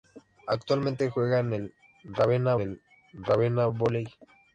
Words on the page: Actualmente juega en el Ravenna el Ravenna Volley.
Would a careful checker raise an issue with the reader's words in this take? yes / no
no